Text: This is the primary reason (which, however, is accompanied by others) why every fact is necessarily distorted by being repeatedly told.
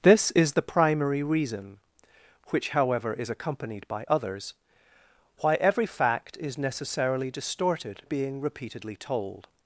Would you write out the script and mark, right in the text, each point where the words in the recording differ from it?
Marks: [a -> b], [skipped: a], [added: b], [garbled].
This is the primary reason (which, however, is accompanied by others) why every fact is necessarily distorted [skipped: by] being repeatedly told.